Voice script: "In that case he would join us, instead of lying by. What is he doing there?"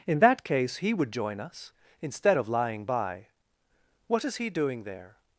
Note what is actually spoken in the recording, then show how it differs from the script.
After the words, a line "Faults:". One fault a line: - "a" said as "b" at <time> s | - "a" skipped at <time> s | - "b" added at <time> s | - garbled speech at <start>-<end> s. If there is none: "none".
"In that case he would join us, instead of lying by. What is he doing there?"
Faults:
none